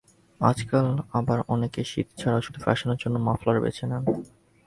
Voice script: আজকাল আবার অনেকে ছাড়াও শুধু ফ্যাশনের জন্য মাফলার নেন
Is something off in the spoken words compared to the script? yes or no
yes